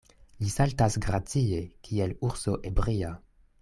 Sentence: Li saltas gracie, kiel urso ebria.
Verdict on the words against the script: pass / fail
pass